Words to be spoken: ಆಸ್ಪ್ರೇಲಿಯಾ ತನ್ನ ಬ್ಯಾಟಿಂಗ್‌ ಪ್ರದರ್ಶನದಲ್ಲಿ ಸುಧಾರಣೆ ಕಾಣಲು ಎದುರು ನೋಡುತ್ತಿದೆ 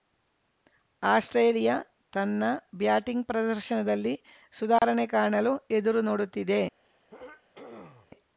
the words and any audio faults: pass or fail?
fail